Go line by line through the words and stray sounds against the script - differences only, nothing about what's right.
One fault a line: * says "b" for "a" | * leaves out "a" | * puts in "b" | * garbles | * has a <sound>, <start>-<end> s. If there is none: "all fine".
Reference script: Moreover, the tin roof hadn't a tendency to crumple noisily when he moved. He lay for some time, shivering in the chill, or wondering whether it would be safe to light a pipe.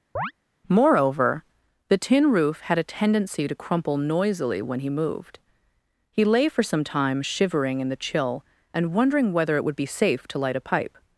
* has a chirp, 0.2-0.3 s
* says "had" for "hadn't"
* says "and" for "or"